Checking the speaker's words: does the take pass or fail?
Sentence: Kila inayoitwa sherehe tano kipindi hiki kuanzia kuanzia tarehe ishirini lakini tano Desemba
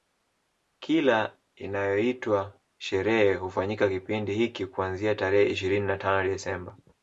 fail